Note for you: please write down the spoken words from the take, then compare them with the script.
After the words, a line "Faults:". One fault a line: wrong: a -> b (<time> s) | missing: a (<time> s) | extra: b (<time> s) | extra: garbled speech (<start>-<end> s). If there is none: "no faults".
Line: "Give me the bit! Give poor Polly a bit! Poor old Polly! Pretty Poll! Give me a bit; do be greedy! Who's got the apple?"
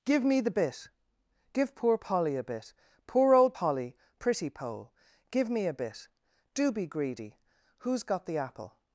"Give me the bit! Give poor Polly a bit! Poor old Polly! Pretty Poll! Give me a bit; do be greedy! Who's got the apple?"
Faults:
no faults